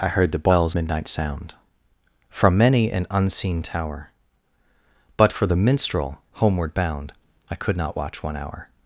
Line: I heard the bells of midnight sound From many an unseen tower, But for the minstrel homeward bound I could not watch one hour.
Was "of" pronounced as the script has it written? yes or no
no